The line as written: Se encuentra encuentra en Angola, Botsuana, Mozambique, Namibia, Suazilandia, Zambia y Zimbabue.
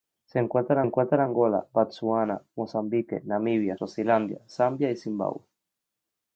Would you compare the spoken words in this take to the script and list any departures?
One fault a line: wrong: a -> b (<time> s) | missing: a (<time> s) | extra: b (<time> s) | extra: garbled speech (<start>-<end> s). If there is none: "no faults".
no faults